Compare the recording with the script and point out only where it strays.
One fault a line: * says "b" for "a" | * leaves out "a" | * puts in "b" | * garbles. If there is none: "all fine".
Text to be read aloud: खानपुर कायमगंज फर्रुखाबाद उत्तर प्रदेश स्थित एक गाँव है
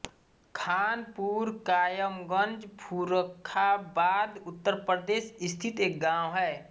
all fine